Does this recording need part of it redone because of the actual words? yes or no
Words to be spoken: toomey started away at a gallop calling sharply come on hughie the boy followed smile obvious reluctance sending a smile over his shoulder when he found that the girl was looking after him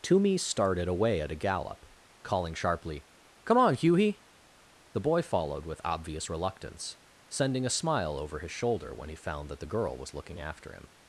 yes